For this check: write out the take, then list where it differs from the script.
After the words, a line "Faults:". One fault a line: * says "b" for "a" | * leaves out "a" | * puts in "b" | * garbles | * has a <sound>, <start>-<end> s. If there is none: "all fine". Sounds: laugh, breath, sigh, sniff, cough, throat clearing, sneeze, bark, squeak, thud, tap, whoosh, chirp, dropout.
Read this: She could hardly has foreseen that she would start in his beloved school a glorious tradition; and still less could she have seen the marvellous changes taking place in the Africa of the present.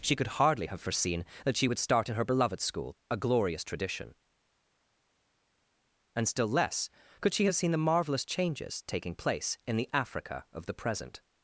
She could hardly have foreseen that she would start in her beloved school a glorious tradition; and still less could she have seen the marvellous changes taking place in the Africa of the present.
Faults:
* says "have" for "has"
* says "her" for "his"